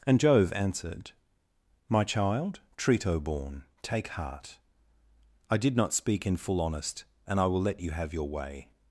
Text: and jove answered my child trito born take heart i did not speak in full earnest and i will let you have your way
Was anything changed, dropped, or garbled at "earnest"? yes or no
yes